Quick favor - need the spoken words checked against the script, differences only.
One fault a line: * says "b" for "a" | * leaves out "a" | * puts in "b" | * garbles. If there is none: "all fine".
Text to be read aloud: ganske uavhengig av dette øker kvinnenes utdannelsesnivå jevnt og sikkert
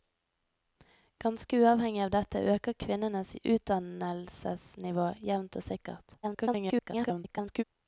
* garbles